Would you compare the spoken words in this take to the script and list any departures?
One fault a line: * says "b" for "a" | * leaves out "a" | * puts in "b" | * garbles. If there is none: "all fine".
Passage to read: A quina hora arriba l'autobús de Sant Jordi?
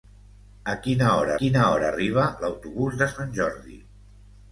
* puts in "quina hora"